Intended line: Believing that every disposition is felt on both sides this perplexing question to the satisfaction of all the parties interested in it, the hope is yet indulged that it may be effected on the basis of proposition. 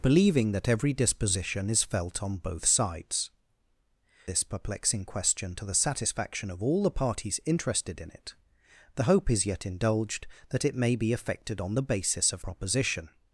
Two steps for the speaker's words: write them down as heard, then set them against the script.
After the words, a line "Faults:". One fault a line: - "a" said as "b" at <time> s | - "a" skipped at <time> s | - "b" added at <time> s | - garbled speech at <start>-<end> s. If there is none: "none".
Believing that every disposition is felt on both sides this perplexing question to the satisfaction of all the parties interested in it, the hope is yet indulged that it may be effected on the basis of proposition.
Faults:
none